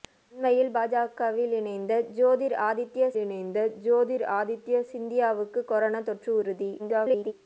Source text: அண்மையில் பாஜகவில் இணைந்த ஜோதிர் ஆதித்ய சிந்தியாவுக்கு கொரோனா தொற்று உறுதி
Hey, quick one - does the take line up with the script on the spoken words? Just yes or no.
no